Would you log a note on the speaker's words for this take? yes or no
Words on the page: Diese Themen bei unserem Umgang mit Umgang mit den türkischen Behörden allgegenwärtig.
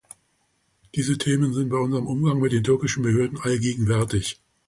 yes